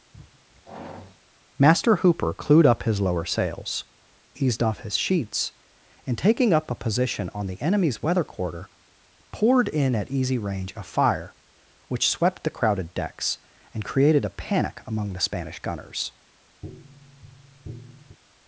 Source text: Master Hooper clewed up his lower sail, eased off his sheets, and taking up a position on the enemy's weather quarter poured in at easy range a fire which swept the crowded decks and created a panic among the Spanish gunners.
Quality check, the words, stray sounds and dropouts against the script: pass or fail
fail